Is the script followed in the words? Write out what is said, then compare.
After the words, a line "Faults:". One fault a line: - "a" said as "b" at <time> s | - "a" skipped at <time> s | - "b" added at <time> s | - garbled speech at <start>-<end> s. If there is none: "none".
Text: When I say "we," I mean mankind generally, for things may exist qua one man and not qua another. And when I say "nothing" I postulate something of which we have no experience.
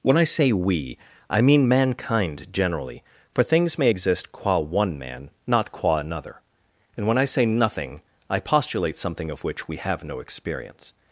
When I say "we," I mean mankind generally, for things may exist qua one man not qua another. And when I say "nothing" I postulate something of which we have no experience.
Faults:
- "and" skipped at 5.3 s